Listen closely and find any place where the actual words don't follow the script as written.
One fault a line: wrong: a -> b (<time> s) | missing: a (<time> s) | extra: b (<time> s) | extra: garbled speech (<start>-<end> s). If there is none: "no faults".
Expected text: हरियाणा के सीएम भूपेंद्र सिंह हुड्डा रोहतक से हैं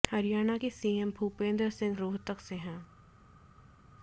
missing: हुड्डा (2.0 s)